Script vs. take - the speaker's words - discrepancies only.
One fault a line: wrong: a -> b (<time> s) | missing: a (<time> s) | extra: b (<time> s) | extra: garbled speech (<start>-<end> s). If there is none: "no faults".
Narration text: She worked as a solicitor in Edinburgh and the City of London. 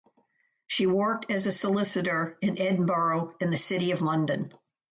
no faults